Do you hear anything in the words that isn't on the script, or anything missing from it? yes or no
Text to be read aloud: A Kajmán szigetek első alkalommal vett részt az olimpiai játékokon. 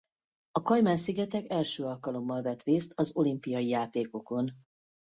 no